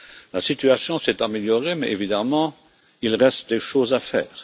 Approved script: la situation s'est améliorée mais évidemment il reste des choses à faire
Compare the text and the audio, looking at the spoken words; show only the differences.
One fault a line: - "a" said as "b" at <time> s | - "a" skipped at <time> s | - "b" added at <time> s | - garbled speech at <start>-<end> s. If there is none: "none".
none